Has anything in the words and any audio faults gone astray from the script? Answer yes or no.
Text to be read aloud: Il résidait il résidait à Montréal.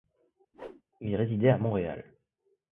yes